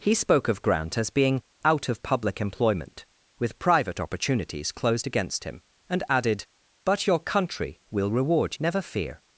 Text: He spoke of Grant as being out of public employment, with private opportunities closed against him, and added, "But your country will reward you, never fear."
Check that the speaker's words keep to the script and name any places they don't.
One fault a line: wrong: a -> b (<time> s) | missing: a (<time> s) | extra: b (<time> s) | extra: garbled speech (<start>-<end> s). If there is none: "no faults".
missing: you (8.6 s)